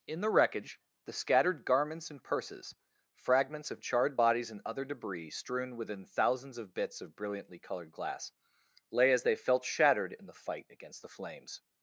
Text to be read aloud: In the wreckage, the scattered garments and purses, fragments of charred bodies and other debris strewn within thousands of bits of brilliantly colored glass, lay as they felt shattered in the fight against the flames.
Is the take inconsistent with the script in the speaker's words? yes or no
no